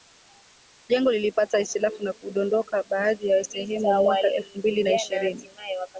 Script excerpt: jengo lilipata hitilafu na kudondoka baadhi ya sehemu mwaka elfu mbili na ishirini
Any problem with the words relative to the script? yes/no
no